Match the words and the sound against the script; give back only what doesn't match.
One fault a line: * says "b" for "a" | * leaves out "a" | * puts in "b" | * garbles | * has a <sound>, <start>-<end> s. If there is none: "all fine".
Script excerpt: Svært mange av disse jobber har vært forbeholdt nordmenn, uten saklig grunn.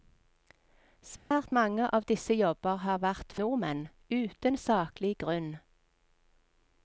* has a dropout, 1.2-1.3 s
* leaves out "forbeholdt"